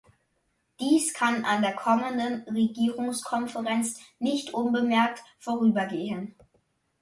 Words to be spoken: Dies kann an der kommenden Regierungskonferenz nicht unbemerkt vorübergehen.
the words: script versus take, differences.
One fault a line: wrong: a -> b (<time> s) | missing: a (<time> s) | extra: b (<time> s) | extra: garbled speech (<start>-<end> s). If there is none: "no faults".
no faults